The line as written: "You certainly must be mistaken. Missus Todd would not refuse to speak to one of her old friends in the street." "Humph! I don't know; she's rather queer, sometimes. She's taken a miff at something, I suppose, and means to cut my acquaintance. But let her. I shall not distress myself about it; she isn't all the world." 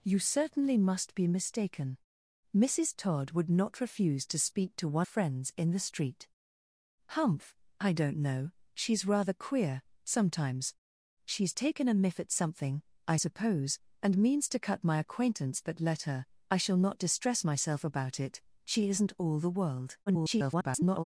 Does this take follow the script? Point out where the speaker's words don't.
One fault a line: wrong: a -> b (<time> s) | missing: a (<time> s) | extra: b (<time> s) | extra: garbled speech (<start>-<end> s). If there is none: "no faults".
missing: of her old (5.1 s)
extra: garbled speech (20.1-21.0 s)